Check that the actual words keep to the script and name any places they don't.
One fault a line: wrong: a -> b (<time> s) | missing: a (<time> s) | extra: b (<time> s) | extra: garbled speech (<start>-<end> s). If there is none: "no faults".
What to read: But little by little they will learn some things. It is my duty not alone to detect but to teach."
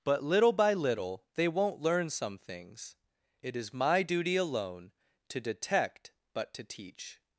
wrong: will -> won't (1.5 s)
missing: not (4.4 s)